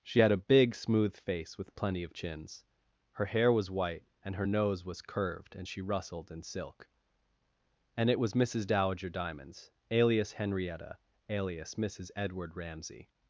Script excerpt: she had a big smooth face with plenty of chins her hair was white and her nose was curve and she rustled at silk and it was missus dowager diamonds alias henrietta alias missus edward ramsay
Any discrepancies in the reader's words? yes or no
yes